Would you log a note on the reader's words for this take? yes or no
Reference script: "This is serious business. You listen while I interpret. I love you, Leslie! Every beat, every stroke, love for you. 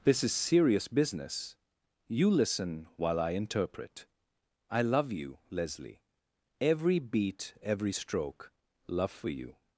no